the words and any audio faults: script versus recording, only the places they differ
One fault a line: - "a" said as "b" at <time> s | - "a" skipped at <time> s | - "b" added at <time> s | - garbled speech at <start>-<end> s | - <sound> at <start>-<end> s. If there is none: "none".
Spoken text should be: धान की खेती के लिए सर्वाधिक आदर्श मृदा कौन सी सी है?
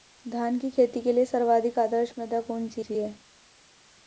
none